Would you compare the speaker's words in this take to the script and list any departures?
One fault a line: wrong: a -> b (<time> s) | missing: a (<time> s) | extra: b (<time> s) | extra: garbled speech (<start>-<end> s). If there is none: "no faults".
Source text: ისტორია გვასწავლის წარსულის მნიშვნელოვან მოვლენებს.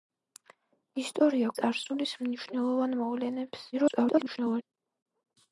missing: გვასწავლის (1.5 s)
extra: garbled speech (3.7-4.6 s)